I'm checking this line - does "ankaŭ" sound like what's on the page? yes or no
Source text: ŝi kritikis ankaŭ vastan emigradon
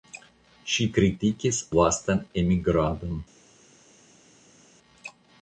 no